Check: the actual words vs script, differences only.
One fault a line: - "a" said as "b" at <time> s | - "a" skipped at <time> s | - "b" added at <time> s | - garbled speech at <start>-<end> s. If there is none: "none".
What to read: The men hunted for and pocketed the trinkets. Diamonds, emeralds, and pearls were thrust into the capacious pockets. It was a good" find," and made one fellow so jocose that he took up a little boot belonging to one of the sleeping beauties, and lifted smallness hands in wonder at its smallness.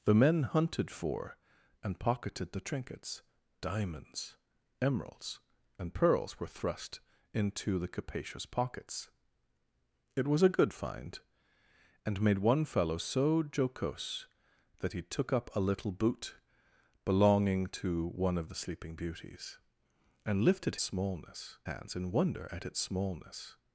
none